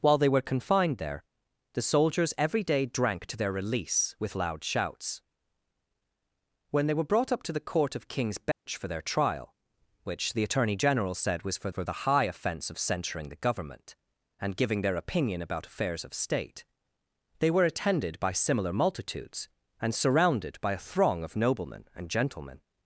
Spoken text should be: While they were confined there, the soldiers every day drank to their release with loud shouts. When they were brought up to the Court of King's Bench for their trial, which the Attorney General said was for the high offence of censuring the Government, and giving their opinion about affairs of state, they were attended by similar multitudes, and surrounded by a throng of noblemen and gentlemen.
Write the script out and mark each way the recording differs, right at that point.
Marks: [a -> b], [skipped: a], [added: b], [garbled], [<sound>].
While they were confined there, the soldiers every day drank to their release with loud shouts. When they were brought up to the Court of King's Bench [dropout] for their trial, which the Attorney General said was for [added: for] the high offence of censuring the Government, and giving their opinion about affairs of state, they were attended by similar multitudes, and surrounded by a throng of noblemen and gentlemen.